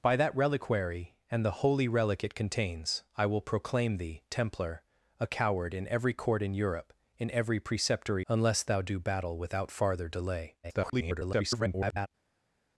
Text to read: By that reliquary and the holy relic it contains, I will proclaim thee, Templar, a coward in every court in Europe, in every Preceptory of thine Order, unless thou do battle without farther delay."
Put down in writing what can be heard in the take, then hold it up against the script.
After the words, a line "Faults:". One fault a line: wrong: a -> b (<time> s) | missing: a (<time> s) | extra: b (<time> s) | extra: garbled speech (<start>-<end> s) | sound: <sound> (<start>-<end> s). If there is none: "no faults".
By that reliquary and the holy relic it contains, I will proclaim thee, Templar, a coward in every court in Europe, in every Preceptory unless thou do battle without farther delay." [garbled]
Faults:
missing: of thine Order (8.3 s)
extra: garbled speech (10.6-12.1 s)